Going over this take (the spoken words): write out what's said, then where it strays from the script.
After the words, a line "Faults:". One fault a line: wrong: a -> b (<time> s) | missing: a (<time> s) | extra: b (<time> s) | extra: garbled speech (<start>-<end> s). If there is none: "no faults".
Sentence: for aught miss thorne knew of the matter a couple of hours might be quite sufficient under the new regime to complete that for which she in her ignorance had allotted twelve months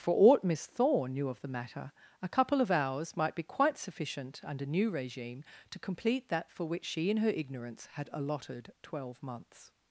for aught miss thorne knew of the matter a couple of hours might be quite sufficient under new regime to complete that for which she in her ignorance had allotted twelve months
Faults:
missing: the (4.7 s)